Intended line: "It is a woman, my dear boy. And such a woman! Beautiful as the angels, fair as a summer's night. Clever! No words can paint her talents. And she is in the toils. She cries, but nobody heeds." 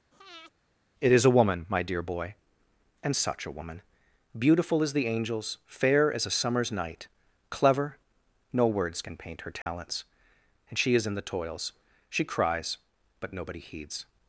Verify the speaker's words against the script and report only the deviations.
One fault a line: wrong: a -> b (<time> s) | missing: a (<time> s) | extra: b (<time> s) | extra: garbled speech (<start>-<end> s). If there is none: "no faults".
no faults